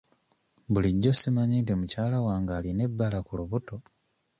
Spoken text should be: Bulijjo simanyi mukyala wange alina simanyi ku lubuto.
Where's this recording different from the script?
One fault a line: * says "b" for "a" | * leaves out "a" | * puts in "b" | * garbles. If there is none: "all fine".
* puts in "nti"
* says "ebbala" for "simanyi"